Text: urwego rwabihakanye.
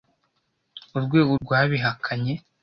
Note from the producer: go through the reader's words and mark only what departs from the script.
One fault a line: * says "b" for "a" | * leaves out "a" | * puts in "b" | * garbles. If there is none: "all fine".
all fine